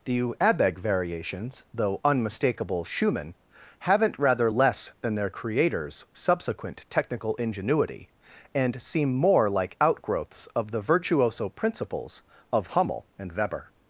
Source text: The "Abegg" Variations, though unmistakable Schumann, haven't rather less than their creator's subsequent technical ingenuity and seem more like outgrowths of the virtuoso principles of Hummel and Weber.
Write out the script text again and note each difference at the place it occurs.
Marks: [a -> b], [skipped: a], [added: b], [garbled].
The "Abegg" Variations, though unmistakable Schumann, haven't rather less than their creator's subsequent technical ingenuity and seem more like outgrowths of the virtuoso principles of Hummel and Weber.